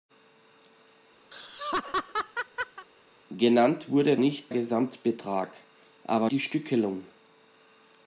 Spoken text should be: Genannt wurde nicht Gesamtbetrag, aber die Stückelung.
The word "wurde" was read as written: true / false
true